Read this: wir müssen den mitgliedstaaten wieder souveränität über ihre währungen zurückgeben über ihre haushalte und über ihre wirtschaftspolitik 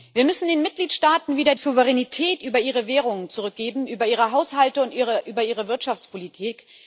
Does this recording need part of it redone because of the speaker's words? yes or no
no